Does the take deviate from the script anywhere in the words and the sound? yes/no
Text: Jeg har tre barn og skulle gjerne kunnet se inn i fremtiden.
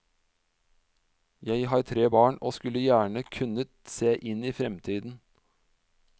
no